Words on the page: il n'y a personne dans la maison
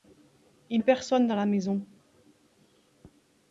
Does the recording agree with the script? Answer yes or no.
no